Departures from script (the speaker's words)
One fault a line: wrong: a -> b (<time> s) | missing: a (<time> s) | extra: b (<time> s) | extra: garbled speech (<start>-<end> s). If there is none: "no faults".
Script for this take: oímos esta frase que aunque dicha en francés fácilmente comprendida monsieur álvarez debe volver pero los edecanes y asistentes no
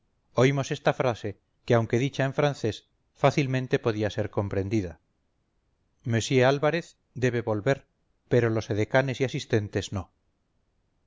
extra: podía ser (3.9 s)